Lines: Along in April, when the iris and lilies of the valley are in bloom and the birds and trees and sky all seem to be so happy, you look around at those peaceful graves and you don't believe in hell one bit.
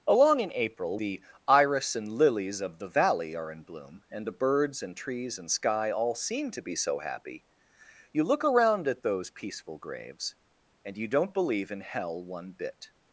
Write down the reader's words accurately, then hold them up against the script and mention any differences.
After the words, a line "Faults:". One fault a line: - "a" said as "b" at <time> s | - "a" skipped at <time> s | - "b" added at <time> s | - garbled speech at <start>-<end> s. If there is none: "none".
Along in April, the iris and lilies of the valley are in bloom and the birds and trees and sky all seem to be so happy, you look around at those peaceful graves and you don't believe in hell one bit.
Faults:
- "when" skipped at 1.0 s